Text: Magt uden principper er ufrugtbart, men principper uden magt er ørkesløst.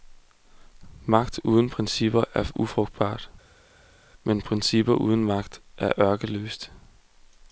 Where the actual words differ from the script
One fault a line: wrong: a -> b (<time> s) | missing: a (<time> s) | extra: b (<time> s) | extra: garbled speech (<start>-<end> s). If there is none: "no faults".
no faults